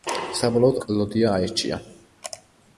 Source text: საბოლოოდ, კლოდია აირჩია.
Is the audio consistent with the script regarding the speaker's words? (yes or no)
yes